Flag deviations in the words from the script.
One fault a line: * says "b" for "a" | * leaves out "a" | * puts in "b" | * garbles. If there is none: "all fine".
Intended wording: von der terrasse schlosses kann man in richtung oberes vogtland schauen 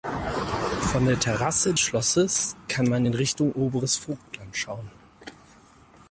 all fine